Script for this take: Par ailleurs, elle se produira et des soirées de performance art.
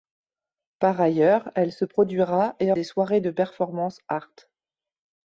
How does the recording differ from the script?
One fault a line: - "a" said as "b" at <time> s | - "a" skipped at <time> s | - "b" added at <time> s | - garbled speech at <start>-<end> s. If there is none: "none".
none